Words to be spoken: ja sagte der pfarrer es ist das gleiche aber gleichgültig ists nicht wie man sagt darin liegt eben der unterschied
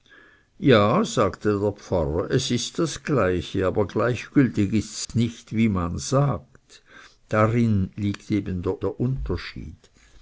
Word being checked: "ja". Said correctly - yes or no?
yes